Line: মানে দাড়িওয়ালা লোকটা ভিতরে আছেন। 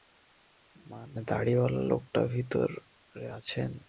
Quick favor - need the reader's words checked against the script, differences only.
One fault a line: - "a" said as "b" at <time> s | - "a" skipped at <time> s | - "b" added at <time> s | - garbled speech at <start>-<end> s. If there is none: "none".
none